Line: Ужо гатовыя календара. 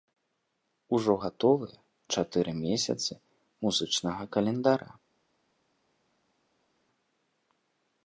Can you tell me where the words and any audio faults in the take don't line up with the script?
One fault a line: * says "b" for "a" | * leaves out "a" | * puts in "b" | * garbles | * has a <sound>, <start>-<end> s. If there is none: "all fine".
* puts in "чатыры месяцы музычнага"